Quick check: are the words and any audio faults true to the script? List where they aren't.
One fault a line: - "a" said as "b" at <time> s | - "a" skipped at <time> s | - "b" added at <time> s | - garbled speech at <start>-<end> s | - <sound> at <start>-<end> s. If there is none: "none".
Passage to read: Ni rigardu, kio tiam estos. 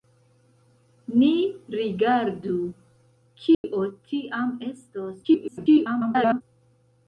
- dropout at 3.5-3.6 s
- garbled speech at 5.2-6.4 s